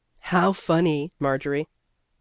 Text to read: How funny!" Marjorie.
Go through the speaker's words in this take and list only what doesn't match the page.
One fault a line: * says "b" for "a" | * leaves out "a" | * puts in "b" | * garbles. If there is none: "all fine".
all fine